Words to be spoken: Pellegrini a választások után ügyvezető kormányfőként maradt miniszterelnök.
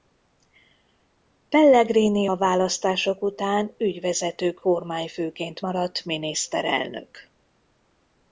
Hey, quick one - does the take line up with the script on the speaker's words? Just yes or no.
yes